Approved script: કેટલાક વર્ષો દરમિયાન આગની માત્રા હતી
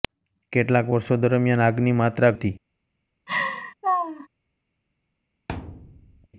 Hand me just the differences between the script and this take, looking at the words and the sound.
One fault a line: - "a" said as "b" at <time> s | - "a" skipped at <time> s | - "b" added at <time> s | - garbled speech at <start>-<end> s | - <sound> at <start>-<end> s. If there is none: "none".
- laugh at 3.3-4.3 s
- thud at 5.5-6.3 s